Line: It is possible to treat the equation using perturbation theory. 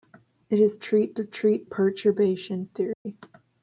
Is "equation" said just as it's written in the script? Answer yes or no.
no